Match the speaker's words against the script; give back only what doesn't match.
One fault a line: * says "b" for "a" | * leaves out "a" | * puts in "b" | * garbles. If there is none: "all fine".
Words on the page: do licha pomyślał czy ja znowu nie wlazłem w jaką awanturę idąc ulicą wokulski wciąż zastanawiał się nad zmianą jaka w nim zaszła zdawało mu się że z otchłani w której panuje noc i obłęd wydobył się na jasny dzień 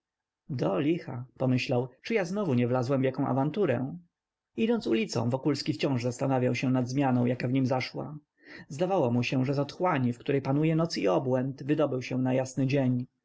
all fine